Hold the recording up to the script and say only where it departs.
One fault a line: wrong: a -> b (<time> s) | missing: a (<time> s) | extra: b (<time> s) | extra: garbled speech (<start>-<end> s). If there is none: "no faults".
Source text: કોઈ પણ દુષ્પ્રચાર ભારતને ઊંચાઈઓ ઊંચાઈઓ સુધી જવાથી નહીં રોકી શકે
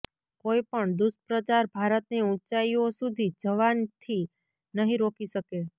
missing: ઊંચાઈઓ (2.9 s)